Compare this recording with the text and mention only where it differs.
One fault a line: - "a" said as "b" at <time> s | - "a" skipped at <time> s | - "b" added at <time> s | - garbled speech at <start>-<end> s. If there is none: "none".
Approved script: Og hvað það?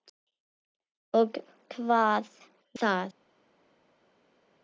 none